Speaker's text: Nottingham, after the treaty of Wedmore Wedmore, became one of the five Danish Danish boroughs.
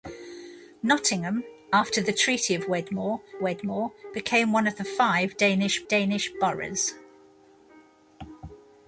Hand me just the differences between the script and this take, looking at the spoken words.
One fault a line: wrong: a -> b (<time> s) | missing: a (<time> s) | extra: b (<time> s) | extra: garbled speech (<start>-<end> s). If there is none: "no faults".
no faults